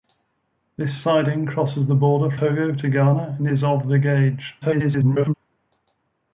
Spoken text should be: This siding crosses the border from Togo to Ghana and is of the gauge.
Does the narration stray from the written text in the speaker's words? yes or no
yes